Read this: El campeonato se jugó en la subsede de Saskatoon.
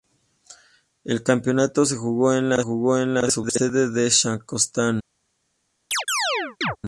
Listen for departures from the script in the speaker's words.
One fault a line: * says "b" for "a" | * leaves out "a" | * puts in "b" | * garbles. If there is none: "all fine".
* puts in "jugó en la"